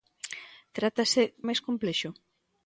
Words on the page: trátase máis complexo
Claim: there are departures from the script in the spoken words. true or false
false